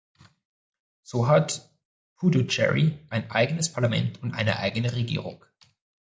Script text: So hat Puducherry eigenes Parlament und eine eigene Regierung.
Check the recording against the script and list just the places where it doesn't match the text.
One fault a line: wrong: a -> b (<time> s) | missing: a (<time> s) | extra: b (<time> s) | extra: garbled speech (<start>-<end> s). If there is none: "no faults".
extra: ein (3.1 s)